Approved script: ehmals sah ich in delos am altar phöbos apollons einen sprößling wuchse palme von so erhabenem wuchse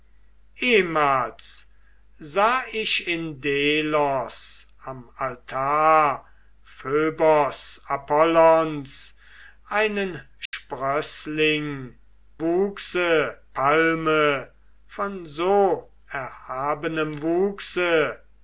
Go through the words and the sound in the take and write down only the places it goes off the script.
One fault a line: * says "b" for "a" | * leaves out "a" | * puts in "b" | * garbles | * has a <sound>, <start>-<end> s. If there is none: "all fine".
* has a dropout, 10.5-10.5 s